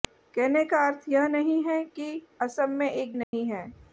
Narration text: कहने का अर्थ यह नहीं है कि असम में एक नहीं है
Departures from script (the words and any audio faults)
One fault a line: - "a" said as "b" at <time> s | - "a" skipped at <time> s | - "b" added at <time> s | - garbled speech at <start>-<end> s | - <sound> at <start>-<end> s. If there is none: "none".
- dropout at 3.2-3.3 s